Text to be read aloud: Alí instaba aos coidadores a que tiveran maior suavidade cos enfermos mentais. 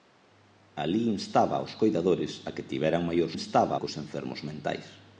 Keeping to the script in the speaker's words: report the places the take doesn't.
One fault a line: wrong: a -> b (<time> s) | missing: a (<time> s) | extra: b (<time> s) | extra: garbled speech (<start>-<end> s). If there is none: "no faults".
wrong: suavidade -> instaba (3.4 s)